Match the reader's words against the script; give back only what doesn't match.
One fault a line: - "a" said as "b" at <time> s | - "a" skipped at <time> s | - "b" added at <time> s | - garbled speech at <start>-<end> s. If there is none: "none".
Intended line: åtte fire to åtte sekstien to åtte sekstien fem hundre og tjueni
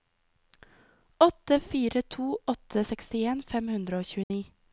- "to åtte sekstien" skipped at 3.4 s